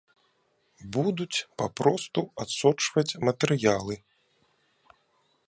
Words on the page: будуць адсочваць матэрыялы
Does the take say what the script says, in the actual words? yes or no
no